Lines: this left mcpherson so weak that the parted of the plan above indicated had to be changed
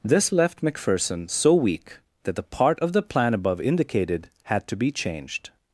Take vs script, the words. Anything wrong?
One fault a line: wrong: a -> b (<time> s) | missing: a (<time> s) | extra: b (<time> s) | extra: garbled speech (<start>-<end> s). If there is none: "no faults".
wrong: parted -> part (2.4 s)